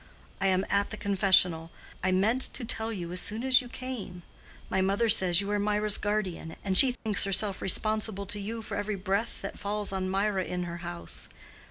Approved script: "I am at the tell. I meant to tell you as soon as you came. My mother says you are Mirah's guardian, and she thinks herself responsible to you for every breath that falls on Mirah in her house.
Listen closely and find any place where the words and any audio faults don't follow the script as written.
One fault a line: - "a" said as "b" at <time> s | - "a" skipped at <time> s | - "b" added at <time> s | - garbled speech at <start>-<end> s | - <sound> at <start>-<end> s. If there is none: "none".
- "tell" said as "confessional" at 1.0 s
- dropout at 6.9-7.1 s